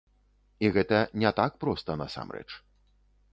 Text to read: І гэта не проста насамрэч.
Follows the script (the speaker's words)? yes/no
no